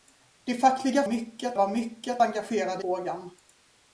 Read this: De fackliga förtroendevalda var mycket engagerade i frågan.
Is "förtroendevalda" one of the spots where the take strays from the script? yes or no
yes